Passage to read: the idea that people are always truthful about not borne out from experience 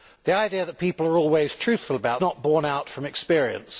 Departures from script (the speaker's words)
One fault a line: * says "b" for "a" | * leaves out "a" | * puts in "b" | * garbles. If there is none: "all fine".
all fine